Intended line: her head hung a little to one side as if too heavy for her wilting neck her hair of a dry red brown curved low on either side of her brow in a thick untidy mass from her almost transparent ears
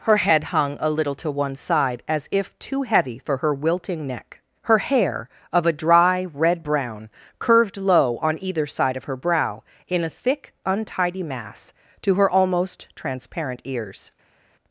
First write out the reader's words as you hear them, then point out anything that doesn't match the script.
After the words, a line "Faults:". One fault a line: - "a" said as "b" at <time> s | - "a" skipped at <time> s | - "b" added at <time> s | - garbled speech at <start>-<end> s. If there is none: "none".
her head hung a little to one side as if too heavy for her wilting neck her hair of a dry red brown curved low on either side of her brow in a thick untidy mass to her almost transparent ears
Faults:
- "from" said as "to" at 12.0 s